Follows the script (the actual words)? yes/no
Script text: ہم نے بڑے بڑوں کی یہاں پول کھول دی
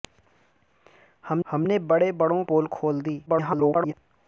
no